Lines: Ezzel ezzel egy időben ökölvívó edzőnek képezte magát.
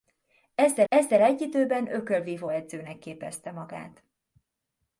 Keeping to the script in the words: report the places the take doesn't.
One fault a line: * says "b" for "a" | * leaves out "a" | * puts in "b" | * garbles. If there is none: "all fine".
all fine